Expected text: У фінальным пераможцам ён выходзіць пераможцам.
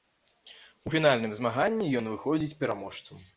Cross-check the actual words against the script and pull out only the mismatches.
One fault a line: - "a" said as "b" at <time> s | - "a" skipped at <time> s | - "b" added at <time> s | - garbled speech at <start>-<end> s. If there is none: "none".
- "пераможцам" said as "змаганні" at 1.4 s